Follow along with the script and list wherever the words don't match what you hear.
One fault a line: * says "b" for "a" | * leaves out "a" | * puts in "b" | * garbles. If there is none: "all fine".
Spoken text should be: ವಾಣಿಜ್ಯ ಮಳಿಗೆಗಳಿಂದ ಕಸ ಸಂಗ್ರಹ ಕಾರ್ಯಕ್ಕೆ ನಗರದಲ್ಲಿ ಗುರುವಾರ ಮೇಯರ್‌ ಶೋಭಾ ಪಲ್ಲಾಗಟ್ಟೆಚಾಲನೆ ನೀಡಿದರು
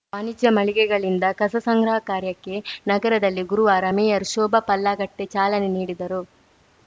all fine